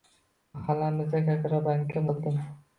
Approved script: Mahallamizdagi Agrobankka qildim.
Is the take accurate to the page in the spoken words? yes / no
yes